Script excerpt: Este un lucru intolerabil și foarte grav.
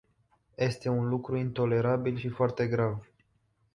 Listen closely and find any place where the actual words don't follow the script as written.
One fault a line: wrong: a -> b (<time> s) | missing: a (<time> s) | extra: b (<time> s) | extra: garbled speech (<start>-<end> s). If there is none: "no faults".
no faults